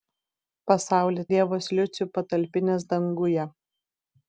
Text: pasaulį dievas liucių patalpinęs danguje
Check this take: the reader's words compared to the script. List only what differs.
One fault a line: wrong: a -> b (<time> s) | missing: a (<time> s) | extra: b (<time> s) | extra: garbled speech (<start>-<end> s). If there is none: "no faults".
no faults